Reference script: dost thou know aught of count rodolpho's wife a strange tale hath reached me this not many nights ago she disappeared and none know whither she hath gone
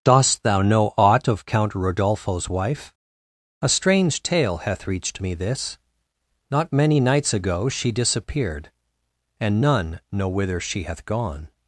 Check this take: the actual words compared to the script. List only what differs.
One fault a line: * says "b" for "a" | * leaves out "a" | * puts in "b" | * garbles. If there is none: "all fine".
all fine